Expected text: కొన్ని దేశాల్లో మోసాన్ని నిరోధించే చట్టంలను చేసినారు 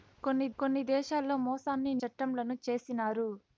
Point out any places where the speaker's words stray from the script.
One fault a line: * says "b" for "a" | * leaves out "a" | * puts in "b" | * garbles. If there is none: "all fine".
* puts in "కొన్ని"
* leaves out "నిరోధించే"